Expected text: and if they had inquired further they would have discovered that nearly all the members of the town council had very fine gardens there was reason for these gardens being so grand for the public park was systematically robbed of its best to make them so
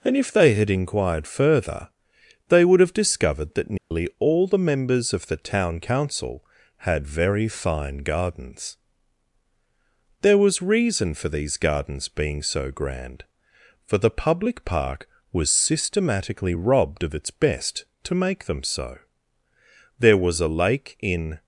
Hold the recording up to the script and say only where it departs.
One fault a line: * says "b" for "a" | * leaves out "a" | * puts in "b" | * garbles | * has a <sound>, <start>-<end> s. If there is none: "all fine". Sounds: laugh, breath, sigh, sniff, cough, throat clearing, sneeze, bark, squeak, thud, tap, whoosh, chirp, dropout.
* has a dropout, 3.8-3.9 s
* puts in "there was a lake in"